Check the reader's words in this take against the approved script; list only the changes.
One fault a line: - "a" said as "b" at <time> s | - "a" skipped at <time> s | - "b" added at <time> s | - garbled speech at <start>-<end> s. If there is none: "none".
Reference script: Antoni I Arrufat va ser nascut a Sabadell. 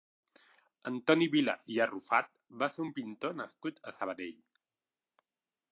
- "Vila" added at 1.4 s
- "un pintor" added at 2.9 s